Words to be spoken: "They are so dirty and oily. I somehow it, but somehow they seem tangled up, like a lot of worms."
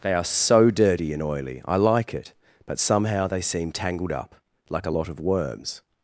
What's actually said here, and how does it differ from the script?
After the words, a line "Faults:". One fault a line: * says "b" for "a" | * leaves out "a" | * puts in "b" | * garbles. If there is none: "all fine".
"They are so dirty and oily. I like it, but somehow they seem tangled up, like a lot of worms."
Faults:
* says "like" for "somehow"